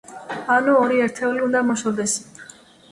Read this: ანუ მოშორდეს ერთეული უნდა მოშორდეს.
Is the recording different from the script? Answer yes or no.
yes